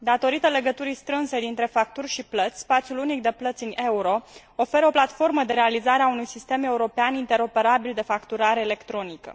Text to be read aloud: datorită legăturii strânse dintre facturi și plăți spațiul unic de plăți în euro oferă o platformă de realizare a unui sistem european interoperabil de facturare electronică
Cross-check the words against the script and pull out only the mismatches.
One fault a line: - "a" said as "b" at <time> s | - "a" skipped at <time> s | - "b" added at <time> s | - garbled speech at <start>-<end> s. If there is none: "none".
none